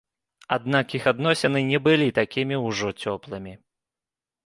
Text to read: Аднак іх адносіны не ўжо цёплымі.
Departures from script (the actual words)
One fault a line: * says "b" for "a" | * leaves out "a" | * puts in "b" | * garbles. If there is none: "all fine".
* puts in "былі такімі"